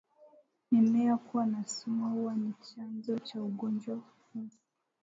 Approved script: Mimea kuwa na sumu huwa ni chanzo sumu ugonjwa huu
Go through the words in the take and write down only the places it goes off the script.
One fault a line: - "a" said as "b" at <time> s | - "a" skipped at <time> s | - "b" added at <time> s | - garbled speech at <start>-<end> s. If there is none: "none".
- "sumu" said as "cha" at 3.2 s